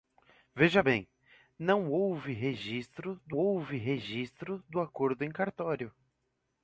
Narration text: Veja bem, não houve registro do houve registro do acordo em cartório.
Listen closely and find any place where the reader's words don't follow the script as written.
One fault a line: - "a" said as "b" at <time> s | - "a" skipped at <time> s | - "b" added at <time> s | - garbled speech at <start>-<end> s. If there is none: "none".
none